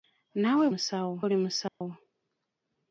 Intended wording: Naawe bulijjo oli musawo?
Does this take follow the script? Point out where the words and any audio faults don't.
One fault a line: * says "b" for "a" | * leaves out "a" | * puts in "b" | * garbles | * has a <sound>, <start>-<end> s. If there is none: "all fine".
* says "musawo" for "bulijjo"
* has a dropout, 1.7-1.8 s